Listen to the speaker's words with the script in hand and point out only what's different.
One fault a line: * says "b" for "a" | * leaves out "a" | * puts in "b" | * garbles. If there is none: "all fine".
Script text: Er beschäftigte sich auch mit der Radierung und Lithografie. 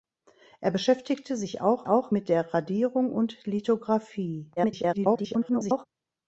* puts in "auch"
* garbles